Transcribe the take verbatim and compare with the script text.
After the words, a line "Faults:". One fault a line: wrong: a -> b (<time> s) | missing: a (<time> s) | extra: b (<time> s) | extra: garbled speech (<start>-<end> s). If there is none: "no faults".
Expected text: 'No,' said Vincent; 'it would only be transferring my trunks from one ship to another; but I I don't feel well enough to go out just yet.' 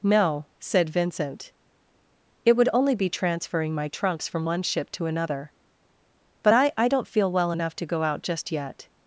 'No,' said Vincent; 'it would only be transferring my trunks from one ship to another; but I I don't feel well enough to go out just yet.'
Faults:
no faults